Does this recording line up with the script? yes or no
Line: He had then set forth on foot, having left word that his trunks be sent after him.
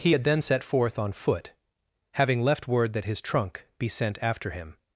no